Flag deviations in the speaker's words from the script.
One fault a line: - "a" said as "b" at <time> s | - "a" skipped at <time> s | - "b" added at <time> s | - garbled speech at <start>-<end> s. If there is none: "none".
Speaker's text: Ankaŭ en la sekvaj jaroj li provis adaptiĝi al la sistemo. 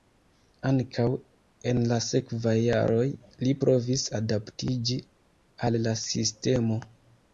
none